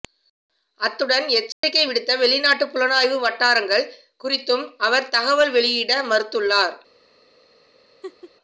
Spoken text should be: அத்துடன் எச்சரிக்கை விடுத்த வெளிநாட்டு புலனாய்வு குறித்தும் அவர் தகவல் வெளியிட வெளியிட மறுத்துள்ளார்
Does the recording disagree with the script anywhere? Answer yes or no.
yes